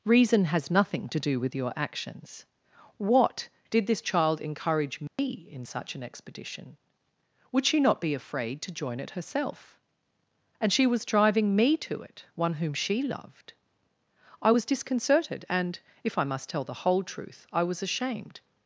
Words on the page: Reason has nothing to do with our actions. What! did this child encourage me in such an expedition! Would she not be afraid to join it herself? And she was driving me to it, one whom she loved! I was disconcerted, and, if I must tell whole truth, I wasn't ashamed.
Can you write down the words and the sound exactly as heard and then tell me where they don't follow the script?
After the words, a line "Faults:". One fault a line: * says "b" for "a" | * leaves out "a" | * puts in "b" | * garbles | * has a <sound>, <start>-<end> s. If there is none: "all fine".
Reason has nothing to do with your actions. What! did this child encourage me in such an expedition! Would she not be afraid to join it herself? And she was driving me to it, one whom she loved! I was disconcerted, and, if I must tell the whole truth, I was ashamed.
Faults:
* says "your" for "our"
* has a dropout, 5.1-5.2 s
* puts in "the"
* says "was" for "wasn't"